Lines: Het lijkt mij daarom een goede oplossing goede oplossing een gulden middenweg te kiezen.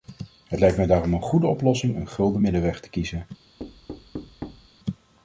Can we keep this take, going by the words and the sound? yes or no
no